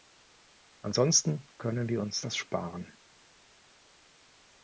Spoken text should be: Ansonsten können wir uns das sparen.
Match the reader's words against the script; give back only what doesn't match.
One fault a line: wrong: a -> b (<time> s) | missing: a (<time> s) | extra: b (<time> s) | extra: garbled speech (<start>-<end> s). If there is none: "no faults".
no faults